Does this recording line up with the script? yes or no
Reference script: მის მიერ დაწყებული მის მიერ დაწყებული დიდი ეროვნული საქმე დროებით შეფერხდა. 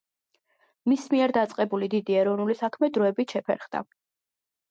no